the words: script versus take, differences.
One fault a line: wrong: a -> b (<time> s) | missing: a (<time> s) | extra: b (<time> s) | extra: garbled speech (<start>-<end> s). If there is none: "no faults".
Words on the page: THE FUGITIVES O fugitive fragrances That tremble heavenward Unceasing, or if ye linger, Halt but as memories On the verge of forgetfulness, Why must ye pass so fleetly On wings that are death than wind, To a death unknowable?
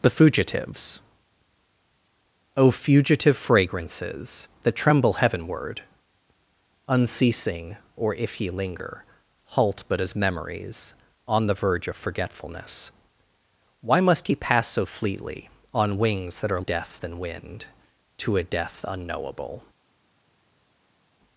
no faults